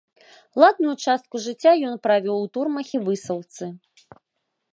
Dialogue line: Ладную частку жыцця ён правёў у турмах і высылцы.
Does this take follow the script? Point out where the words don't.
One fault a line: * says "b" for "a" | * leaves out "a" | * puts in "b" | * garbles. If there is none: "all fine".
all fine